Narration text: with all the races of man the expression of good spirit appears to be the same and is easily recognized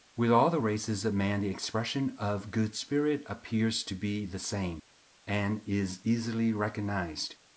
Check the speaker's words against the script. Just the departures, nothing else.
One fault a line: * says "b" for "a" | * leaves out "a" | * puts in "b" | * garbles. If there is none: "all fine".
all fine